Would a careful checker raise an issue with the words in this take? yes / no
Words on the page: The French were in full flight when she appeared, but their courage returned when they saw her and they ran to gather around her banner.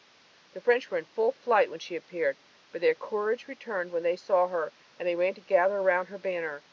no